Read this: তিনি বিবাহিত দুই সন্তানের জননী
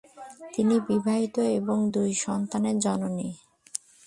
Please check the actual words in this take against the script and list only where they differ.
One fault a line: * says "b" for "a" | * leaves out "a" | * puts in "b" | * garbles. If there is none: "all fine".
* puts in "এবং"